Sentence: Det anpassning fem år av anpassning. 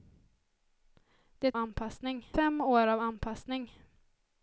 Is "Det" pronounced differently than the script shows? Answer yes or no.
no